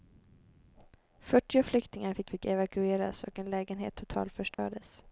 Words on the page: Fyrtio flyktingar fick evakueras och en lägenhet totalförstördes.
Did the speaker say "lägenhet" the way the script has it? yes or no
yes